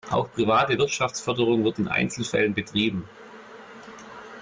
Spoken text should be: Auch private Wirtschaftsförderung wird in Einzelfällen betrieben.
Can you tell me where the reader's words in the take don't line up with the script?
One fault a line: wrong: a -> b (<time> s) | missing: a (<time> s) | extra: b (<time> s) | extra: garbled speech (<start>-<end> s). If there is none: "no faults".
no faults